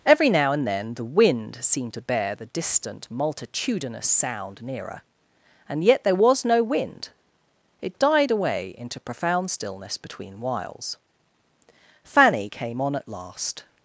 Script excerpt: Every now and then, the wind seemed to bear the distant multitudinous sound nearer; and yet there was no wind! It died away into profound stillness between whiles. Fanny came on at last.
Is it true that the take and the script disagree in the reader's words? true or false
false